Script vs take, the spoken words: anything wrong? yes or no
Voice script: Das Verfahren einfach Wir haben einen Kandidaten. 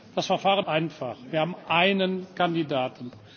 no